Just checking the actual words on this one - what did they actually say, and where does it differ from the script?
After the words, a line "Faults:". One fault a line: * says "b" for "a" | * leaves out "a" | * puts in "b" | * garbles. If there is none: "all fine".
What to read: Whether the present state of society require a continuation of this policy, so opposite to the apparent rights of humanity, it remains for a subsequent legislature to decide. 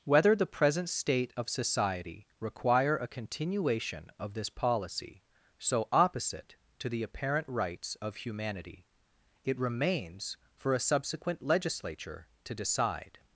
Whether the present state of society require a continuation of this policy, so opposite to the apparent rights of humanity, it remains for a subsequent legislature to decide.
Faults:
all fine